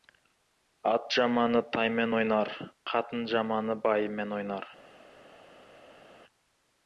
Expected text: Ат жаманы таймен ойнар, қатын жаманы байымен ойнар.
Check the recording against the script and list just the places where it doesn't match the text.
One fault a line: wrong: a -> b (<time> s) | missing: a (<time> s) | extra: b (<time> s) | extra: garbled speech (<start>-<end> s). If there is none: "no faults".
no faults